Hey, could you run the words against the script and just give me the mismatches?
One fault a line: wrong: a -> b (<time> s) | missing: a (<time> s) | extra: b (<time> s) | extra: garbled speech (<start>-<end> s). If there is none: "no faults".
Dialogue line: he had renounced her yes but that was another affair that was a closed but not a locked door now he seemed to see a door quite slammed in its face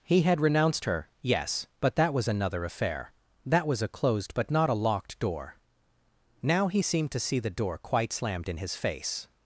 wrong: a -> the (7.4 s)
wrong: its -> his (8.6 s)